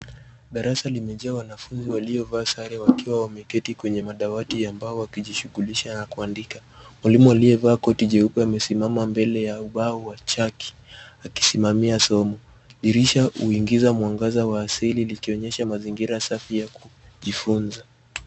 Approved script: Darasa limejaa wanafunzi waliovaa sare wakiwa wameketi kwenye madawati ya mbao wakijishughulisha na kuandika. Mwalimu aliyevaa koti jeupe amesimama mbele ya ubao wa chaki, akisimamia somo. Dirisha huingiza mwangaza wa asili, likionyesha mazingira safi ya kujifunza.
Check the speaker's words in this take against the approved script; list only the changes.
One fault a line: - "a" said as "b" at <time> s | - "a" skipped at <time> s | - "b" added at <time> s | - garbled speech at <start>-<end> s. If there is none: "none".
none